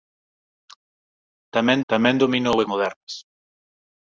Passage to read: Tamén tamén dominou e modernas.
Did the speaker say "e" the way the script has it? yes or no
yes